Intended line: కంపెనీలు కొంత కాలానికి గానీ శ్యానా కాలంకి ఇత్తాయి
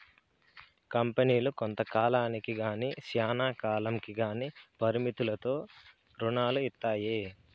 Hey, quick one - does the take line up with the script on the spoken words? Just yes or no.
no